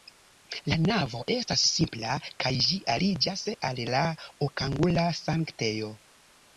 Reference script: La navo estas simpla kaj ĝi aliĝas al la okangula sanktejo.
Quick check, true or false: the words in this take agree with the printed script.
true